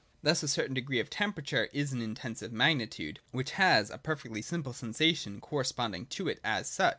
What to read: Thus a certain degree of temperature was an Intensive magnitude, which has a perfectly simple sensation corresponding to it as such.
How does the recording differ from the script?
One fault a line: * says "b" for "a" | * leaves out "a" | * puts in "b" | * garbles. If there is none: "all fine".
* says "is" for "was"